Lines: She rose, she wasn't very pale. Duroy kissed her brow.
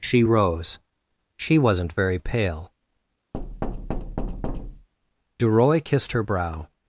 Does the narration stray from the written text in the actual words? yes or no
no